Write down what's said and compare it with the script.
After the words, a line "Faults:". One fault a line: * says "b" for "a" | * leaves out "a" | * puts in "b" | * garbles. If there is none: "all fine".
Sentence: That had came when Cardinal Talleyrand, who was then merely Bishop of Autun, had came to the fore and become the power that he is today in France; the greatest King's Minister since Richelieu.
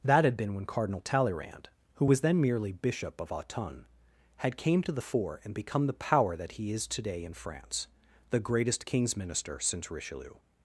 That had been when Cardinal Talleyrand, who was then merely Bishop of Autun, had came to the fore and become the power that he is today in France; the greatest King's Minister since Richelieu.
Faults:
* says "been" for "came"